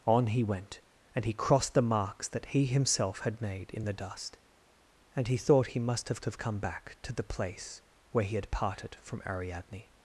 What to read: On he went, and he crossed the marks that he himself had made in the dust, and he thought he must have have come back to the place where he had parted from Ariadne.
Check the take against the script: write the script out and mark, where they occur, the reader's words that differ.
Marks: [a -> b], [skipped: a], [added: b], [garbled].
On he went, and he crossed the marks that he himself had made in the dust, and he thought he must have have come back to the place where he had parted from Ariadne.